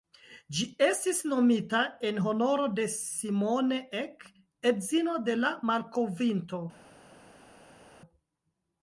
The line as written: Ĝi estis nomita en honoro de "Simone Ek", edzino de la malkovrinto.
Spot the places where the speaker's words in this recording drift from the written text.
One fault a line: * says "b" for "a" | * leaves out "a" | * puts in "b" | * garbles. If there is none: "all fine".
all fine